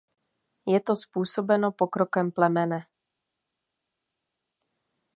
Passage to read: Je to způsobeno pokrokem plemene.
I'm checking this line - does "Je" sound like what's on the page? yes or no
yes